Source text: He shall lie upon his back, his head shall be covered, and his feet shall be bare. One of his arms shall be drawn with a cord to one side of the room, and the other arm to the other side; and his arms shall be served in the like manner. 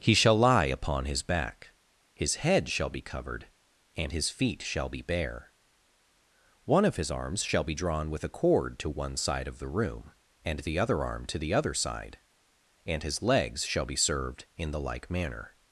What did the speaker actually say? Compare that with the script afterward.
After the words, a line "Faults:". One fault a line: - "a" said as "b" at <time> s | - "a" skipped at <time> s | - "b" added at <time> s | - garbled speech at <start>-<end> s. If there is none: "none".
He shall lie upon his back, his head shall be covered, and his feet shall be bare. One of his arms shall be drawn with a cord to one side of the room, and the other arm to the other side; and his legs shall be served in the like manner.
Faults:
- "arms" said as "legs" at 13.2 s